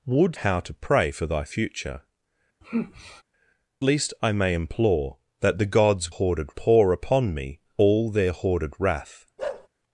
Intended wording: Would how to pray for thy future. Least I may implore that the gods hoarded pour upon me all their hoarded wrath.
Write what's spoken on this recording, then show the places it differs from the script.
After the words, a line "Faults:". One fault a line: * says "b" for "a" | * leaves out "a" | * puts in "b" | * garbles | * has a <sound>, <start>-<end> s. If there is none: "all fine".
Would how to pray for thy future. Least I may implore that the gods hoarded pour upon me all their hoarded wrath.
Faults:
* has a sigh, 2.6-3.2 s
* has a bark, 9.4-9.7 s